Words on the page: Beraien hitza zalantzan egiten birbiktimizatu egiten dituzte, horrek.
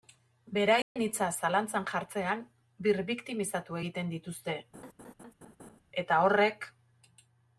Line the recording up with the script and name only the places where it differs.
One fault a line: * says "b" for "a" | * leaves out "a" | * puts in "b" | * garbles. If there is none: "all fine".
* says "jartzean" for "egiten"
* puts in "eta"